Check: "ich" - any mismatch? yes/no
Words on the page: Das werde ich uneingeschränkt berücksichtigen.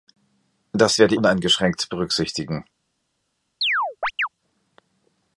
yes